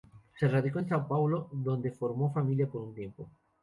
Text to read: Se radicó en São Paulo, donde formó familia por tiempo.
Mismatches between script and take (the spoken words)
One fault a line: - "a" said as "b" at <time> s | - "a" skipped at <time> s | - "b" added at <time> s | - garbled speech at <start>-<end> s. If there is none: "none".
- "un" added at 2.8 s